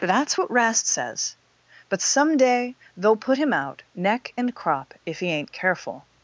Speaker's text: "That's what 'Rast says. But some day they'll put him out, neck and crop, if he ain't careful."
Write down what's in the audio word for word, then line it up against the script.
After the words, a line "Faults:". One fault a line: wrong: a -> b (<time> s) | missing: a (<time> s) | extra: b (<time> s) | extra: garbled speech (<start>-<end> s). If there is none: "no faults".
"That's what 'Rast says. But some day they'll put him out, neck and crop, if he ain't careful."
Faults:
no faults